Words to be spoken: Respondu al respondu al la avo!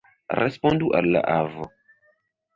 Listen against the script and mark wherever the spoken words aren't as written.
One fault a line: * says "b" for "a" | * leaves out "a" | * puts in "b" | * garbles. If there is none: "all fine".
* leaves out "respondu al"